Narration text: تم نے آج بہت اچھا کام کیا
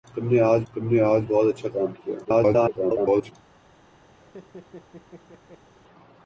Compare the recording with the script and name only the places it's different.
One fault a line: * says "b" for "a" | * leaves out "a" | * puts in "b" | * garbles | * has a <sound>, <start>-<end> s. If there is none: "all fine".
* puts in "تم نے آج"
* garbles
* has a laugh, 4.1-5.7 s